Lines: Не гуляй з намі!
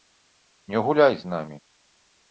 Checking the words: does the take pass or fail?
pass